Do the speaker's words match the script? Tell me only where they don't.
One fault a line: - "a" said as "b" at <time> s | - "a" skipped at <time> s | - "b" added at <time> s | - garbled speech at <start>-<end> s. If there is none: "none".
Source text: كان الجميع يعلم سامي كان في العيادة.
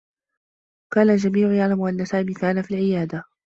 - "أنّ" added at 1.8 s